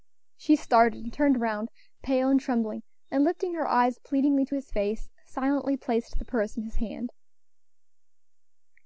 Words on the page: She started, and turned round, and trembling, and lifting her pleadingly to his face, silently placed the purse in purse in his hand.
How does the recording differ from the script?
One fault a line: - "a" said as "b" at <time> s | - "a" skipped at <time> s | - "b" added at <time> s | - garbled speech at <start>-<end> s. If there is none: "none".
- "pale" added at 2.0 s
- "eyes" added at 3.7 s
- "purse in" skipped at 6.6 s